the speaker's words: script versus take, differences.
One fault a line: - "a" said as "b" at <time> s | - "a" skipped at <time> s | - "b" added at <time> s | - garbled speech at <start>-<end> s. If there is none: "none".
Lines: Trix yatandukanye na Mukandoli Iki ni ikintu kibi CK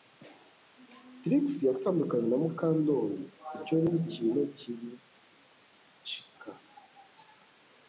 - "Iki" said as "Icyo" at 3.6 s